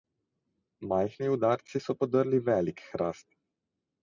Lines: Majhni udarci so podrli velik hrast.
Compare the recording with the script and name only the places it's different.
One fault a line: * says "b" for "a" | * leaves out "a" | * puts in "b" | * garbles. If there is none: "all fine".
all fine